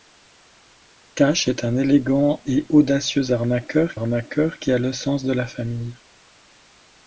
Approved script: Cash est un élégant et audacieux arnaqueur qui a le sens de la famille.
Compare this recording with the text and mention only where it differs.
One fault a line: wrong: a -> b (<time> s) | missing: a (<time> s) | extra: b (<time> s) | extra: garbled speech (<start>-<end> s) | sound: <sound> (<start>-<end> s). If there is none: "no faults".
extra: arnaqueur (3.9 s)